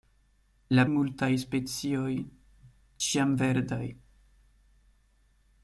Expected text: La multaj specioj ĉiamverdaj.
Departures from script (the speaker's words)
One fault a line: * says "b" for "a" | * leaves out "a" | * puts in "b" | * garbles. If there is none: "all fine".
all fine